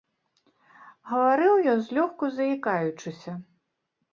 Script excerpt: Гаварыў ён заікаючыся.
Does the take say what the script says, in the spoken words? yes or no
no